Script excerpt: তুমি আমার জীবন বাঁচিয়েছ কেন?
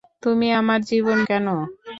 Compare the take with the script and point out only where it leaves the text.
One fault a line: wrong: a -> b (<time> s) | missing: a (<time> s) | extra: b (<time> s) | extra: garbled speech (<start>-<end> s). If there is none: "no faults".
missing: বাঁচিয়েছ (1.2 s)